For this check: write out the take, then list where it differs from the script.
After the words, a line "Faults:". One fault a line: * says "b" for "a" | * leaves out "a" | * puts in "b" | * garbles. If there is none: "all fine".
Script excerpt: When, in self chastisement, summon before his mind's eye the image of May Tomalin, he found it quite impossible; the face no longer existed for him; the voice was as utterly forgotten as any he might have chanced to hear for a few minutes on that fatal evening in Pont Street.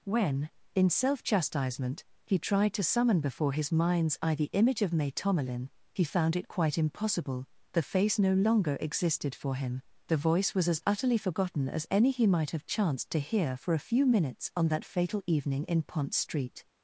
When, in self chastisement, he tried to summon before his mind's eye the image of May Tomalin, he found it quite impossible; the face no longer existed for him; the voice was as utterly forgotten as any he might have chanced to hear for a few minutes on that fatal evening in Pont Street.
Faults:
* puts in "he tried to"